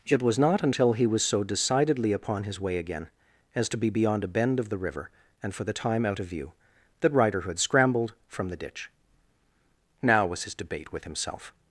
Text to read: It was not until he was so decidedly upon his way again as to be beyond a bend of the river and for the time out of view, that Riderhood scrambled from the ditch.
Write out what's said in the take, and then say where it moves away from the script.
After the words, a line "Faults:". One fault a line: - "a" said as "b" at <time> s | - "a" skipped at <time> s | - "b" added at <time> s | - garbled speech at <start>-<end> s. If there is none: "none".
It was not until he was so decidedly upon his way again as to be beyond a bend of the river and for the time out of view, that Riderhood scrambled from the ditch. 'Now,' was his debate with himself
Faults:
- "Now was his debate with himself" added at 10.0 s